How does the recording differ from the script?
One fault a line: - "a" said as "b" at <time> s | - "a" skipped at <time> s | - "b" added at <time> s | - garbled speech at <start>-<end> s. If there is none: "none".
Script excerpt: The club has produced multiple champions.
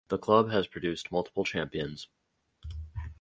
none